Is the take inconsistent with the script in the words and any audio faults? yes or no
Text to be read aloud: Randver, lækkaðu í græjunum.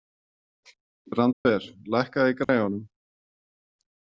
yes